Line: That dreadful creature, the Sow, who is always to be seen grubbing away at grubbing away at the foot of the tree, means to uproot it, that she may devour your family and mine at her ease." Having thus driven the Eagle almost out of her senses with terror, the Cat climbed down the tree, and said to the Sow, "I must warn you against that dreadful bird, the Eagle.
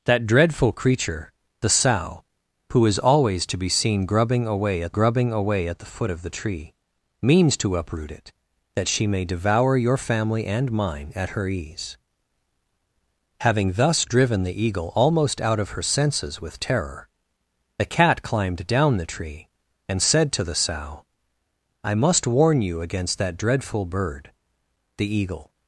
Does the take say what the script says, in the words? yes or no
yes